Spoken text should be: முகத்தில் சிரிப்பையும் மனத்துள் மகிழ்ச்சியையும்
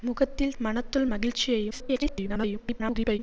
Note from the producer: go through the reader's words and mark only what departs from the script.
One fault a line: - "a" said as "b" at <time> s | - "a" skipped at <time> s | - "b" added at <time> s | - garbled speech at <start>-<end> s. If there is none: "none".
- "சிரிப்பையும்" skipped at 0.6 s
- garbled speech at 1.7-3.2 s